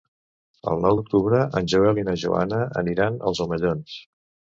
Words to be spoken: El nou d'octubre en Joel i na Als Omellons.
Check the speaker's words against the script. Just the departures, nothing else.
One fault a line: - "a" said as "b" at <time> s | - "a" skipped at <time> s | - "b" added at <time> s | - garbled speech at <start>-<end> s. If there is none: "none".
- "Joana aniran" added at 2.2 s